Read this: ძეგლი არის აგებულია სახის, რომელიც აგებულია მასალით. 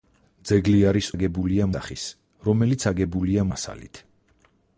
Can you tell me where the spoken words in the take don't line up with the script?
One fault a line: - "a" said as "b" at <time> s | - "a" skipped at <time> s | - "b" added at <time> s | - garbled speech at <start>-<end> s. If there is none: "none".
none